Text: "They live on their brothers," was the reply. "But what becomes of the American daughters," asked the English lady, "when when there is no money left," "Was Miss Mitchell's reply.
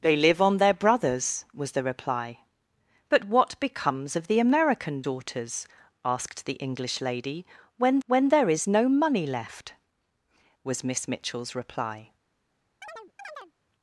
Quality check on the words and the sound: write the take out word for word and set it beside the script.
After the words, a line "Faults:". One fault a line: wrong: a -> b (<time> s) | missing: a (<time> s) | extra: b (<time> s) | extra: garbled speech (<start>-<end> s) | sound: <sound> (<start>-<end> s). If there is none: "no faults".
"They live on their brothers," was the reply. "But what becomes of the American daughters," asked the English lady, "when when there is no money left," "Was Miss Mitchell's reply.
Faults:
sound: chirp (12.8-13.5 s)